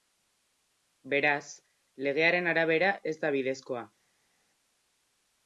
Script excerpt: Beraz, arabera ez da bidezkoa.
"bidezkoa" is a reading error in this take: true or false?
false